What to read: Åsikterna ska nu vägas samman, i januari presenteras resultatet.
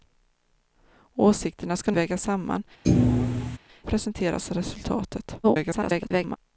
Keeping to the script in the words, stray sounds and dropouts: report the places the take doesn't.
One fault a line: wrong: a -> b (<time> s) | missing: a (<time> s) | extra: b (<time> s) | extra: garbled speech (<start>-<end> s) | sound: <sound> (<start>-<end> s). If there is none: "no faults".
missing: nu (1.9 s)
missing: i januari (2.6 s)
sound: thud (2.8-3.6 s)
extra: garbled speech (5.4-6.4 s)